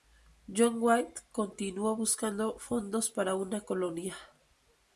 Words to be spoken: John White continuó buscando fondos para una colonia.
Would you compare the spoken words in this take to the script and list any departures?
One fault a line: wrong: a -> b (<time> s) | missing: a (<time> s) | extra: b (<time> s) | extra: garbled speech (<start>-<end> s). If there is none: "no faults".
no faults